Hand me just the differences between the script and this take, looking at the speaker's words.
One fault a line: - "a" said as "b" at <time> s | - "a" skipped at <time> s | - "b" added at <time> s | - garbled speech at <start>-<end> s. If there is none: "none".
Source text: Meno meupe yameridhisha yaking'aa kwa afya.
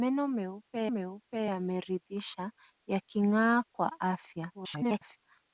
- "meupe" added at 1.0 s
- garbled speech at 4.5-5.2 s